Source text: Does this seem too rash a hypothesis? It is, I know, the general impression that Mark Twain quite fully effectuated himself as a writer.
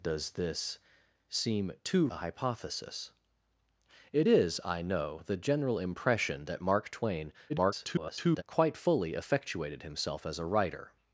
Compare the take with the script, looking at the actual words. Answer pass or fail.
fail